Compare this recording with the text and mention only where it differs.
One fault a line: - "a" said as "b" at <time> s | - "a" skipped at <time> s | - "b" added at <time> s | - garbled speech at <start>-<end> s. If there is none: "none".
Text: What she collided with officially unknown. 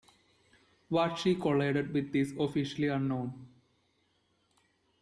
- "is" added at 2.1 s